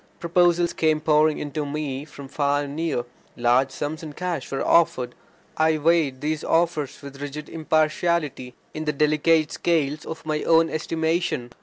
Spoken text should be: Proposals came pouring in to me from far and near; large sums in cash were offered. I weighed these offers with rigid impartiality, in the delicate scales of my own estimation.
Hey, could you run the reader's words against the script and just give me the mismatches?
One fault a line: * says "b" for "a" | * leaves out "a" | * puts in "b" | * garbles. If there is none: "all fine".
all fine